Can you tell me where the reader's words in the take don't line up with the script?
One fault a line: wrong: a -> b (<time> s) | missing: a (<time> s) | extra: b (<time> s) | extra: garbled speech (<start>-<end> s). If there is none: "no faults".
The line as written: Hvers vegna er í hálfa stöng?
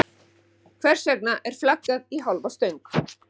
extra: flaggað (1.6 s)